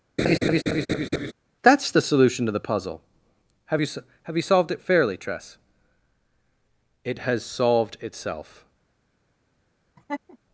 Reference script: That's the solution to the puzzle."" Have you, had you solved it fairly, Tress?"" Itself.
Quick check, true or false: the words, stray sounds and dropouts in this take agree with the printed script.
false